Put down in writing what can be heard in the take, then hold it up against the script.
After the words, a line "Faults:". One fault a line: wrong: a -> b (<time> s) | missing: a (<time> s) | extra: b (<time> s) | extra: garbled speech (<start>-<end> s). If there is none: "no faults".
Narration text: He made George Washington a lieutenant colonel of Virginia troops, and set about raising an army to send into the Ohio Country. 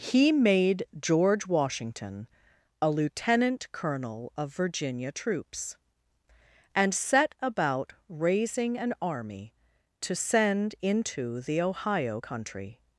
He made George Washington a lieutenant colonel of Virginia troops, and set about raising an army to send into the Ohio Country.
Faults:
no faults